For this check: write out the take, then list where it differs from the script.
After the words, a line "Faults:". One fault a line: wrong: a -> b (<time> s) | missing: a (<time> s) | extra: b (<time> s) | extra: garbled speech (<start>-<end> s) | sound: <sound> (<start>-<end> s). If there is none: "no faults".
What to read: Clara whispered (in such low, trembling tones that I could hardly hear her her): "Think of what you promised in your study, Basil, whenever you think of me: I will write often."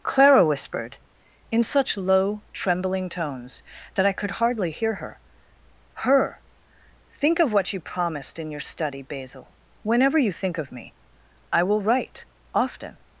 Clara whispered (in such low, trembling tones that I could hardly hear her her): "Think of what you promised in your study, Basil, whenever you think of me: I will write often."
Faults:
no faults